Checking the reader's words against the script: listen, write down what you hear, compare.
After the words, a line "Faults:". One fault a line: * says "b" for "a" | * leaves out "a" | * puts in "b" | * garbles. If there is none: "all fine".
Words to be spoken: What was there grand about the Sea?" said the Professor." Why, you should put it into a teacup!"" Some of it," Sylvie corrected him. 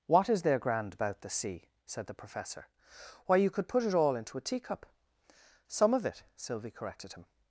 What is there grand about the Sea?" said the Professor." Why, you could put it all into a teacup!"" Some of it," Sylvie corrected him.
Faults:
* says "is" for "was"
* says "could" for "should"
* puts in "all"